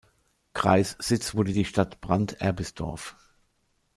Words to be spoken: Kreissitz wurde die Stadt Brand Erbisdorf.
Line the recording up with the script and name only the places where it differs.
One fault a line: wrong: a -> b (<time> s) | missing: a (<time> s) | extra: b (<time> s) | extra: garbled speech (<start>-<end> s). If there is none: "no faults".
no faults